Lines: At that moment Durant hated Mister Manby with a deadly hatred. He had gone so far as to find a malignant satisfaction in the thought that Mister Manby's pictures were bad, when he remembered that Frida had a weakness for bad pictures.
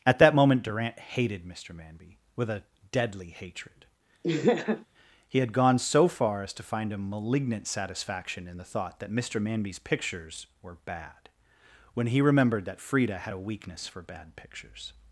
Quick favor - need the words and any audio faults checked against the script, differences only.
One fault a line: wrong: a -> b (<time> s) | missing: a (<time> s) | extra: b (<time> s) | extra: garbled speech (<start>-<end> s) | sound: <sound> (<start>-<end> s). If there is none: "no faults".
sound: laugh (4.2-4.9 s)